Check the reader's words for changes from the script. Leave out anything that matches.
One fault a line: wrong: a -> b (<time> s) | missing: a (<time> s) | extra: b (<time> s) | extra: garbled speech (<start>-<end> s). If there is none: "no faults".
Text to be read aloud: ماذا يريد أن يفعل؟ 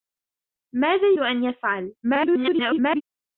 missing: يريد (1.1 s)
extra: garbled speech (2.0-3.0 s)